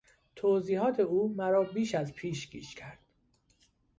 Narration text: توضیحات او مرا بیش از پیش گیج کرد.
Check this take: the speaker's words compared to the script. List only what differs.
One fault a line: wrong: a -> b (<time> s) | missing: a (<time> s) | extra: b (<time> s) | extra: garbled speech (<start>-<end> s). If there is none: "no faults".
no faults